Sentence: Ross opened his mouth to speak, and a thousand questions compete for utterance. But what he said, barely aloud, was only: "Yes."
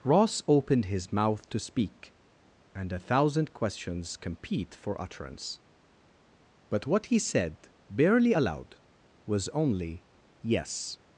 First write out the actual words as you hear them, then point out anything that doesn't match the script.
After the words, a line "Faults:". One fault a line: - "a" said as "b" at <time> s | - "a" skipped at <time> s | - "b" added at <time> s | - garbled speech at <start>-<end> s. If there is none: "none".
Ross opened his mouth to speak, and a thousand questions compete for utterance. But what he said, barely aloud, was only: "Yes."
Faults:
none